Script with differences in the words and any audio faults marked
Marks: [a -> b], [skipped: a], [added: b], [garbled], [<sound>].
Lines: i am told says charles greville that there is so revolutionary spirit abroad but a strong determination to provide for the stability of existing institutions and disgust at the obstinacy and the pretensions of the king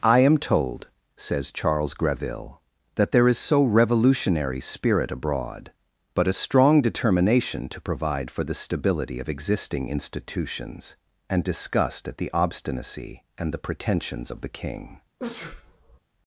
i am told says charles greville that there is so revolutionary spirit abroad but a strong determination to provide for the stability of existing institutions and disgust at the obstinacy and the pretensions of the king [sneeze]